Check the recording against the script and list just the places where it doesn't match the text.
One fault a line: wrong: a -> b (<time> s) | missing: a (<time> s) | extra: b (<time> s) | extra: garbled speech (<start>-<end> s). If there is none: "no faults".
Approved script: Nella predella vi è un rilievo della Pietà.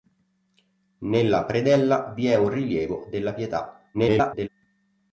extra: garbled speech (3.9-4.5 s)